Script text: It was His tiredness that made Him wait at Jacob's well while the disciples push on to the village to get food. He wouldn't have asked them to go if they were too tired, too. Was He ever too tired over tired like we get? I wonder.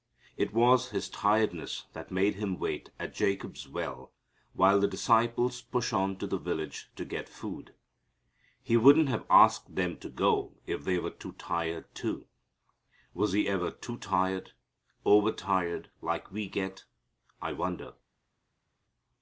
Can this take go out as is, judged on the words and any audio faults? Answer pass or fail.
pass